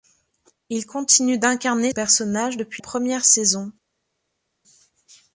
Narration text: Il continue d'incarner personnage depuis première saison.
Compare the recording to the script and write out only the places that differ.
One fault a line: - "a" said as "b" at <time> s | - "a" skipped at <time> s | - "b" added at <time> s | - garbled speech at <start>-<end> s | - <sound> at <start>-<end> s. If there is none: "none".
none